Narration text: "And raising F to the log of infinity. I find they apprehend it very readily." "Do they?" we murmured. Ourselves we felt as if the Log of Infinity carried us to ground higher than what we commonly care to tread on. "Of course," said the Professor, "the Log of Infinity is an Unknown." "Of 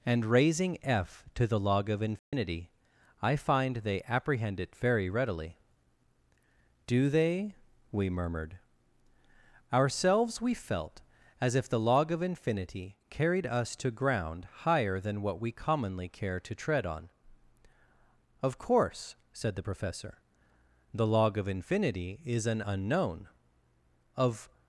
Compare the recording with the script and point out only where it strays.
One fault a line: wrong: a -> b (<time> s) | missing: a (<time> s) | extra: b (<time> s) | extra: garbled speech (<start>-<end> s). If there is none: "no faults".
no faults